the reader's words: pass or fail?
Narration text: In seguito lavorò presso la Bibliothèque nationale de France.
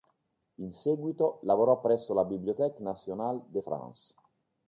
pass